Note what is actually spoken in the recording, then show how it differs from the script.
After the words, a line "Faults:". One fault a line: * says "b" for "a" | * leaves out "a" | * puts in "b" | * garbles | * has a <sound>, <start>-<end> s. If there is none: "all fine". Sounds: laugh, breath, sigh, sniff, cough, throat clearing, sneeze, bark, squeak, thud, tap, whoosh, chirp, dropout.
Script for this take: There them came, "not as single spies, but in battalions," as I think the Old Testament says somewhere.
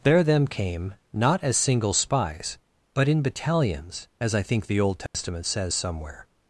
There them came, "not as single spies, but in battalions," as I think the Old Testament says somewhere.
Faults:
* has a dropout, 5.1-5.1 s